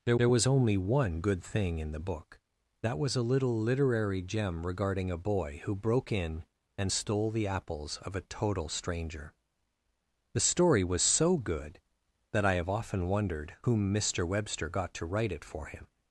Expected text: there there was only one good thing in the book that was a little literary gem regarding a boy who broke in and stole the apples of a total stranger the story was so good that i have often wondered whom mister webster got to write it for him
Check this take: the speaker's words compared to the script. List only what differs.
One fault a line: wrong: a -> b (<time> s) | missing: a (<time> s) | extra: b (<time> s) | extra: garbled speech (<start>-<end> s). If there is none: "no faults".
no faults